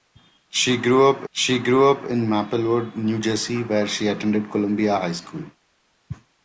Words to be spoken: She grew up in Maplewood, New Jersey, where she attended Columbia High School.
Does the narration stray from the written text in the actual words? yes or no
yes